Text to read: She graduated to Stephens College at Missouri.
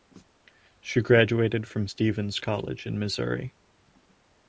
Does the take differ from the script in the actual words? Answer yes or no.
yes